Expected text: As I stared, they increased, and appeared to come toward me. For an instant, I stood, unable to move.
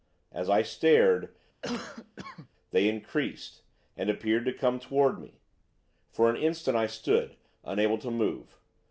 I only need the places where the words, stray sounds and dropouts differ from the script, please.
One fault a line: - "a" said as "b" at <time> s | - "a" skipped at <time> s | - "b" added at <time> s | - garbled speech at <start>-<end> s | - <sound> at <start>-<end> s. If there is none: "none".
- cough at 1.6-2.5 s